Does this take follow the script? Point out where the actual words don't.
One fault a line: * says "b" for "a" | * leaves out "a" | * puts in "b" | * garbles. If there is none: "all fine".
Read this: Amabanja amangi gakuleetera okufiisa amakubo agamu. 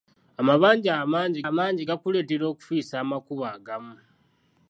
* puts in "amangi"